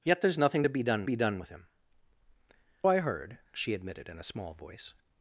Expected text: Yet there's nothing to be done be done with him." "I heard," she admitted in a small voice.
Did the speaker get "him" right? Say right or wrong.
right